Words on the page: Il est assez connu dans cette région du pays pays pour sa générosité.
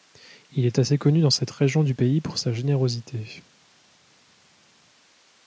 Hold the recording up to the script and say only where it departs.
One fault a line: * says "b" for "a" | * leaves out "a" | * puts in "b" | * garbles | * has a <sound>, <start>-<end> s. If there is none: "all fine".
* leaves out "pays"